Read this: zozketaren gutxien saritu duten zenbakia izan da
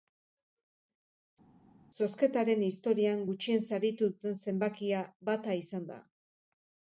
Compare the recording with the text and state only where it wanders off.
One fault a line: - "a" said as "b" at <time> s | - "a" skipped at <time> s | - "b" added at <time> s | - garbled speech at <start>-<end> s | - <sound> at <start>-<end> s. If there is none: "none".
- "historian" added at 2.7 s
- "bata" added at 5.3 s